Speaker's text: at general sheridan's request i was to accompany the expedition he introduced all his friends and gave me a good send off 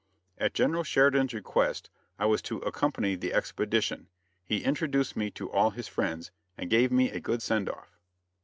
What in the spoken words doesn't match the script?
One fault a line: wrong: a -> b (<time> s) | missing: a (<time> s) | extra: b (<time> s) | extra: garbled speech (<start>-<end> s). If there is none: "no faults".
extra: me to (5.2 s)